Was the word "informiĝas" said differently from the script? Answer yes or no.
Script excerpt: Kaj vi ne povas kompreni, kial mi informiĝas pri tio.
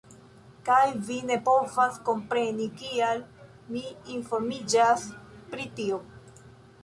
no